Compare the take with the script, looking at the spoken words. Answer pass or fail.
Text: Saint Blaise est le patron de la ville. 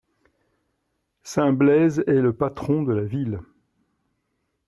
pass